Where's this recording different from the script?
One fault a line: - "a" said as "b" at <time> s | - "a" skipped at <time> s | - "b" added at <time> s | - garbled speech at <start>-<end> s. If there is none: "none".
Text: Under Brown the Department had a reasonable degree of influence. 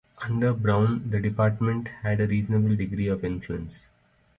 none